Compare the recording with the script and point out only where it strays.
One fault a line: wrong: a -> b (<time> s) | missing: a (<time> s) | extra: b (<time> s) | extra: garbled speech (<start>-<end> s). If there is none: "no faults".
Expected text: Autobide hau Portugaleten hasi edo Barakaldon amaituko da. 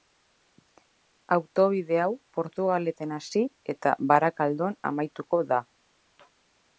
wrong: edo -> eta (3.8 s)